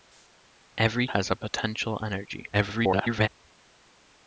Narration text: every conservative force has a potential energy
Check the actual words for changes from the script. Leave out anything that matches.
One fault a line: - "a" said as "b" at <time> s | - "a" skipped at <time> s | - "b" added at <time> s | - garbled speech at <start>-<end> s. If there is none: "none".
- "conservative force" skipped at 1.1 s
- garbled speech at 2.5-3.3 s